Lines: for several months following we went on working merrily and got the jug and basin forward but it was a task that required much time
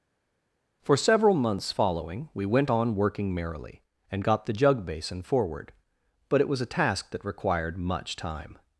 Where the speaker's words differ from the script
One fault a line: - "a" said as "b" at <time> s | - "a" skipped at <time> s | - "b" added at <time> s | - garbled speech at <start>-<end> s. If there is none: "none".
- "and" skipped at 4.8 s